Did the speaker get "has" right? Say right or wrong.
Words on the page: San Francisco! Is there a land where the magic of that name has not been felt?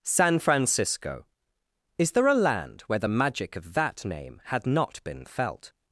wrong